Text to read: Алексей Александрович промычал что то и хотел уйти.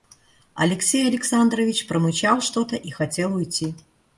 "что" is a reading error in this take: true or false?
false